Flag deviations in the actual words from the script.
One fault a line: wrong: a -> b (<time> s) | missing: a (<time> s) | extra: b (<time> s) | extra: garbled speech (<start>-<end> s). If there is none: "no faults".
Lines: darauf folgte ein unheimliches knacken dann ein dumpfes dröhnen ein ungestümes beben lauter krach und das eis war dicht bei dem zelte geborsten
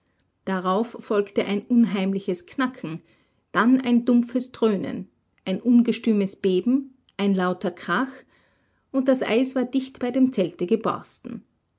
extra: ein (7.2 s)